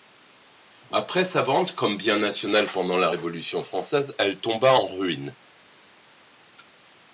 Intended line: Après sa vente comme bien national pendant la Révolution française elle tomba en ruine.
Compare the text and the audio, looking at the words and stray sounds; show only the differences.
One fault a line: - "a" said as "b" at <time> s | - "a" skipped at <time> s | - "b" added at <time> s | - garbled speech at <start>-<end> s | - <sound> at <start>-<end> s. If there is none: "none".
none